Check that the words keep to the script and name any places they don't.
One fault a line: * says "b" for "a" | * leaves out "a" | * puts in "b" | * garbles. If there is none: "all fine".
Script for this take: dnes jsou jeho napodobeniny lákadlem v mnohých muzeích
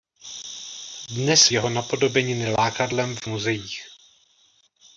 * leaves out "jsou"
* leaves out "mnohých"